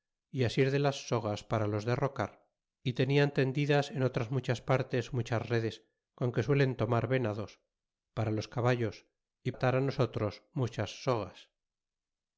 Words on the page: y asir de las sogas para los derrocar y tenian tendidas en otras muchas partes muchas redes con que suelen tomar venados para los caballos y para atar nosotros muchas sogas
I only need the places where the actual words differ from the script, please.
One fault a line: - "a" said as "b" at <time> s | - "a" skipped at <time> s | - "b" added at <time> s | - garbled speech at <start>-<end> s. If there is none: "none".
- "para" skipped at 9.5 s